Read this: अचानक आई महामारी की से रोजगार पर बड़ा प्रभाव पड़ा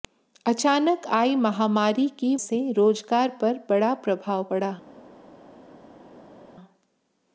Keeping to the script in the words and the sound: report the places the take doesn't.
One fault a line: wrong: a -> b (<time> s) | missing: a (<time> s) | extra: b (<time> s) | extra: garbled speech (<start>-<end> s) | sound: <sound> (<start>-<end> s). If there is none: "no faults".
no faults